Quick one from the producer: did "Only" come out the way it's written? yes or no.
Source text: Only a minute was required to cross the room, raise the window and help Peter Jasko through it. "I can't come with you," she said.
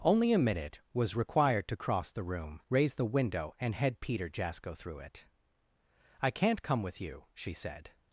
yes